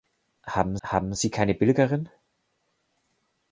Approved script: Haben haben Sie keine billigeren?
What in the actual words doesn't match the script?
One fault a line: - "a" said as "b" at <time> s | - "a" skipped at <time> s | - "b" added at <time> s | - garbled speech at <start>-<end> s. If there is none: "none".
none